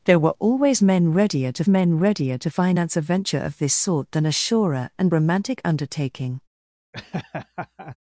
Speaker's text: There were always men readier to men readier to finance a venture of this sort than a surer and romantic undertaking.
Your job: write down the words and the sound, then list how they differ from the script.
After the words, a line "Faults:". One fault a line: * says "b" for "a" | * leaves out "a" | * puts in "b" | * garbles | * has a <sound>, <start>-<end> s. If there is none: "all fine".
There were always men readier to men readier to finance a venture of this sort than a surer and romantic undertaking.
Faults:
* has a laugh, 6.9-8.0 s